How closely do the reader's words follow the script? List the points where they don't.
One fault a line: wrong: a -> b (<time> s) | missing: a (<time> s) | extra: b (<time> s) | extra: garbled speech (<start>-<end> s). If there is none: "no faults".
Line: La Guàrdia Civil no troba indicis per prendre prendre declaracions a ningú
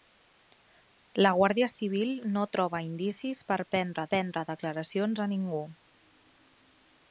no faults